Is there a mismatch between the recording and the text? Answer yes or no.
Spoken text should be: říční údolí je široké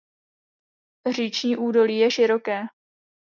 no